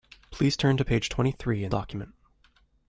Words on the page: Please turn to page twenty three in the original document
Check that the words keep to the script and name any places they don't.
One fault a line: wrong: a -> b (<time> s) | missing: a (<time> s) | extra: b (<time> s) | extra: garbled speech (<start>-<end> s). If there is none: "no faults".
missing: the original (1.7 s)